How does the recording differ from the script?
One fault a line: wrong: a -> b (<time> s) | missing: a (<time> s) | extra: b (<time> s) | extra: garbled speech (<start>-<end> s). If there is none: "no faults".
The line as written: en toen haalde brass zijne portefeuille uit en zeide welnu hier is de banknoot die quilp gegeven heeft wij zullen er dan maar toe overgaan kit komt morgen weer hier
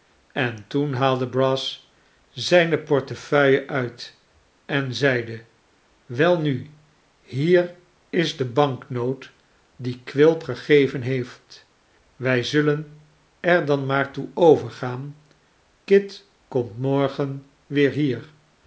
no faults